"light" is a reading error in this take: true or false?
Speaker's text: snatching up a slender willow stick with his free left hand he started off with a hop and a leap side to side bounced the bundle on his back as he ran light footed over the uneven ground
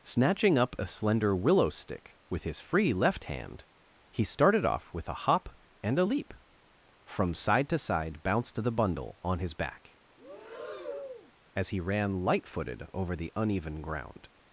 false